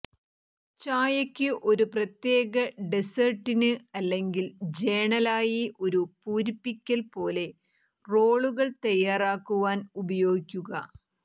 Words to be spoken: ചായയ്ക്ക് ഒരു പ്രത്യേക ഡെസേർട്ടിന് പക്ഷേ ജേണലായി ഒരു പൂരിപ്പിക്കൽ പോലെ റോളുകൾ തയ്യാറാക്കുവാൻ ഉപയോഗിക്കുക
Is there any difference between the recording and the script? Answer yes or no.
yes